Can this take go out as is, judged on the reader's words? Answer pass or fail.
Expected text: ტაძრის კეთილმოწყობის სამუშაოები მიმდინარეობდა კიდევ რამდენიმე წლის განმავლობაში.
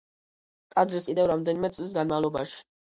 fail